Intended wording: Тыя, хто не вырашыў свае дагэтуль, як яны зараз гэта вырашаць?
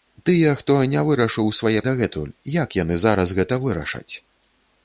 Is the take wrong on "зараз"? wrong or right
right